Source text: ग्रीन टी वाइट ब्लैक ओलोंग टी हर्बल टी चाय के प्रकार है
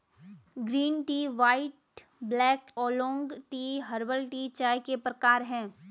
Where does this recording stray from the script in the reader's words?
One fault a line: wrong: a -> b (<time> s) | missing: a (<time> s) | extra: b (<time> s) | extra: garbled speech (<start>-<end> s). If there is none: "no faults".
no faults